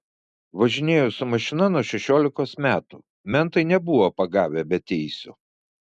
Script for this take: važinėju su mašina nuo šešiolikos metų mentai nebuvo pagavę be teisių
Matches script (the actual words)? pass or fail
pass